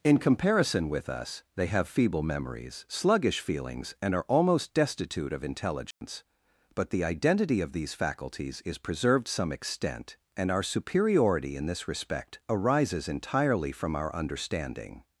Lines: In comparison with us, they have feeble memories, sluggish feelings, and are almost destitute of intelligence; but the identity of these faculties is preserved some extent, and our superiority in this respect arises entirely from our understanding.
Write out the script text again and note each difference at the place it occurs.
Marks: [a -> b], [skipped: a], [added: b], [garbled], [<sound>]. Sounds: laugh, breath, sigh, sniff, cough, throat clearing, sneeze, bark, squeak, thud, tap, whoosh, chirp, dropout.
In comparison with us, they have feeble memories, sluggish feelings, and are almost destitute of intelligence; [dropout] but the identity of these faculties is preserved some extent, and our superiority in this respect arises entirely from our understanding.